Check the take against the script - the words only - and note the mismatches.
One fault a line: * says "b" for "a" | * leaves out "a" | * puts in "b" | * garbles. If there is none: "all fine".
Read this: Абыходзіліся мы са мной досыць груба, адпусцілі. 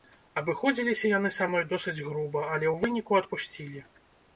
* says "яны" for "мы"
* puts in "але ў выніку"